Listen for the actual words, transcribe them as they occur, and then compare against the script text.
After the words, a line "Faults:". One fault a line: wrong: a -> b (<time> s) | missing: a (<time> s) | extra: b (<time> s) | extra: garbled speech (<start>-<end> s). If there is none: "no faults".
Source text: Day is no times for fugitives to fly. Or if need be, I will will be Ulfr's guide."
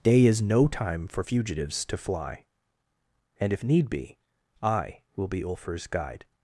Day is no time for fugitives to fly. And if need be, I will be Ulfr's guide."
Faults:
wrong: times -> time (0.7 s)
wrong: Or -> And (3.4 s)
missing: will (5.3 s)